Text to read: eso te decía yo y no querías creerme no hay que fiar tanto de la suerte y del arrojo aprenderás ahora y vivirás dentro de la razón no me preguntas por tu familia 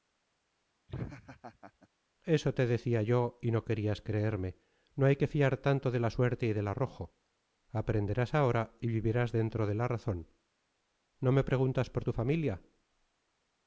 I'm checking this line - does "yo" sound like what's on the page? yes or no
yes